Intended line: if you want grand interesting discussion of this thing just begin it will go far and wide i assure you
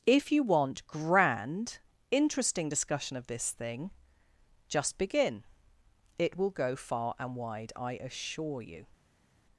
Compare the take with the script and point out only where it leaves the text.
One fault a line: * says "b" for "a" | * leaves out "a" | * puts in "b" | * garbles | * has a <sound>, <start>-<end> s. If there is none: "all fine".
all fine